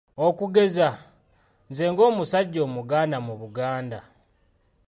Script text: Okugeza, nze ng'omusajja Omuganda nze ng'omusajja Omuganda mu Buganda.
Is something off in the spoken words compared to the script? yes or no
yes